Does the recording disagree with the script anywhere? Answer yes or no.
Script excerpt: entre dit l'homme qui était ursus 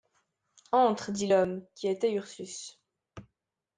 no